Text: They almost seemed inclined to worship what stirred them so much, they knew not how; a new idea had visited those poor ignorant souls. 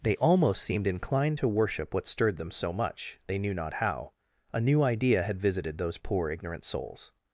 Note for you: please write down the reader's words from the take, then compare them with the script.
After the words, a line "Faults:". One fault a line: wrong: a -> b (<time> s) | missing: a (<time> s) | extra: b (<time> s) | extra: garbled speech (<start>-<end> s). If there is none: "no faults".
They almost seemed inclined to worship what stirred them so much, they knew not how; a new idea had visited those poor ignorant souls.
Faults:
no faults